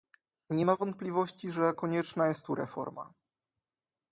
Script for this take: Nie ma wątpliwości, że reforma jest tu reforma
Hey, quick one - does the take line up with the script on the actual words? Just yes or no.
no